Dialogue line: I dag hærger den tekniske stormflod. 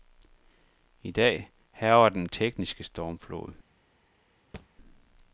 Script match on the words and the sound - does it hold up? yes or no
no